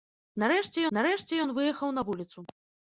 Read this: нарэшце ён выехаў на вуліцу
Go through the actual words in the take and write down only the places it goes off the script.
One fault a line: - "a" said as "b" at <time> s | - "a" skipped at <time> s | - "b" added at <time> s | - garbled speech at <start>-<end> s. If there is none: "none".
- "нарэшце" added at 1.0 s